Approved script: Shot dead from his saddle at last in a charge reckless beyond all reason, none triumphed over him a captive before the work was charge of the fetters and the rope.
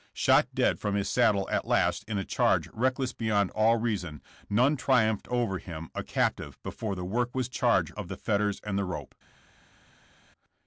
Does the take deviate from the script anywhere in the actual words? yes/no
no